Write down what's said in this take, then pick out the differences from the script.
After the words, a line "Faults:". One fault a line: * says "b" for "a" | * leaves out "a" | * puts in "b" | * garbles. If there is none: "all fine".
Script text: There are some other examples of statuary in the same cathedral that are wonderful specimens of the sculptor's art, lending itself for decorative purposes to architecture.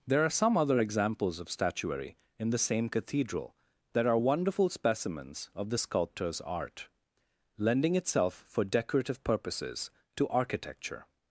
There are some other examples of statuary in the same cathedral that are wonderful specimens of the sculptor's art, lending itself for decorative purposes to architecture.
Faults:
all fine